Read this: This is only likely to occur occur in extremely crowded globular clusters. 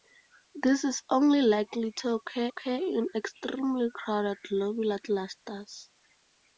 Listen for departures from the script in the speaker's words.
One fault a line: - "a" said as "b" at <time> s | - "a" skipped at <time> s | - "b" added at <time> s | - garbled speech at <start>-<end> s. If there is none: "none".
none